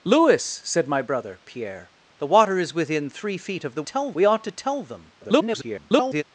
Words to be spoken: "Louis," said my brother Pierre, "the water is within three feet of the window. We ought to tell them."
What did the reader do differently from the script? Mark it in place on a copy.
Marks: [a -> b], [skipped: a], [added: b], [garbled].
"Louis," said my brother Pierre, "the water is within three feet of the [window. -> tell] We ought to tell them." [garbled]